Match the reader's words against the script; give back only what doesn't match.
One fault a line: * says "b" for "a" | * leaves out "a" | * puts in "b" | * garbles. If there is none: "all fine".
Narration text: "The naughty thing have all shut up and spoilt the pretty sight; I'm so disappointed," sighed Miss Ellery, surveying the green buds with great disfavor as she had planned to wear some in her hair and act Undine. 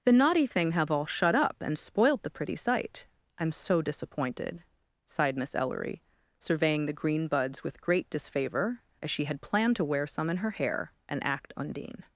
all fine